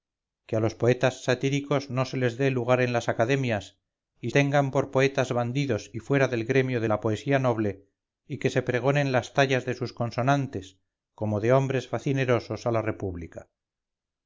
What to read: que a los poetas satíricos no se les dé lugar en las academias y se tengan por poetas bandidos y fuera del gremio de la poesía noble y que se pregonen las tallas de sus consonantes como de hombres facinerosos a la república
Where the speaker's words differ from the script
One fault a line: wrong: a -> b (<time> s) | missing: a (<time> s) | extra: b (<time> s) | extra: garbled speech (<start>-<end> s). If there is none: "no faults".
missing: se (4.3 s)